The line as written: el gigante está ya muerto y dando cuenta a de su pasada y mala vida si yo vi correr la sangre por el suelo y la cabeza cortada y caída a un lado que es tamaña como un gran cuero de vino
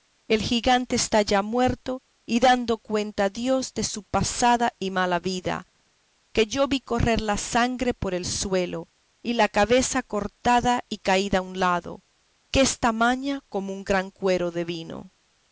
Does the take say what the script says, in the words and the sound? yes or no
no